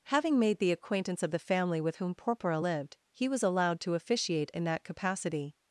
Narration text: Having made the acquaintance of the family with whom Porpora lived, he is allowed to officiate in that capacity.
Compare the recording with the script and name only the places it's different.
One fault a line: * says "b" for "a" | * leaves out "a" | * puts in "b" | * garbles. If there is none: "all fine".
* says "was" for "is"